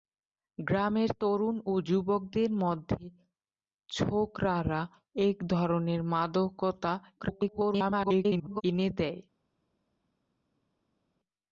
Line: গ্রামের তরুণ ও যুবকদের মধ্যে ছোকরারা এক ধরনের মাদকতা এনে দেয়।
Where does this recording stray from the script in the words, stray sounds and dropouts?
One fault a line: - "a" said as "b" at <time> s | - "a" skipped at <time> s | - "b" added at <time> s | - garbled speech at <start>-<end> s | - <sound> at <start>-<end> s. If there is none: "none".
- garbled speech at 7.2-8.6 s